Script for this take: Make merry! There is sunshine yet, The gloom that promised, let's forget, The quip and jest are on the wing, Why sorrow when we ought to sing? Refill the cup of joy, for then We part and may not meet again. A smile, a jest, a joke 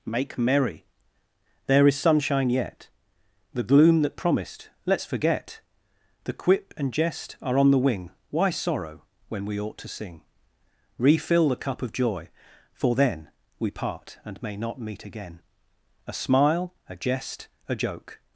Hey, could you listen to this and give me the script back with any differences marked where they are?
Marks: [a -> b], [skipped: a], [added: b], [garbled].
Make merry! There is sunshine yet, The gloom that promised, let's forget, The quip and jest are on the wing, Why sorrow when we ought to sing? Refill the cup of joy, for then We part and may not meet again. A smile, a jest, a joke